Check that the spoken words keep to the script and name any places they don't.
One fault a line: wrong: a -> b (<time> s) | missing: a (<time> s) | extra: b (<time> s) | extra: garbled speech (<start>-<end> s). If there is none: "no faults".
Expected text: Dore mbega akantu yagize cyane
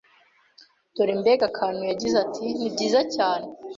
extra: ati nibyiza (2.2 s)